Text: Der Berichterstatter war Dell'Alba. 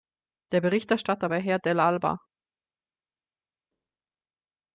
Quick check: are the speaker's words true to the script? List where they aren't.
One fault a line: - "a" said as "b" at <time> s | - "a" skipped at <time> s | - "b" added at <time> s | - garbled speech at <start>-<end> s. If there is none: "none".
- "Herr" added at 1.4 s